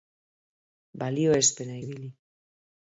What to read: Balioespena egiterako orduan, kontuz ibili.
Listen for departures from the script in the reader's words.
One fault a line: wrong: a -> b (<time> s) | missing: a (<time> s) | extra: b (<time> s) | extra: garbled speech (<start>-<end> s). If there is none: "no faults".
missing: egiterako orduan kontuz (1.8 s)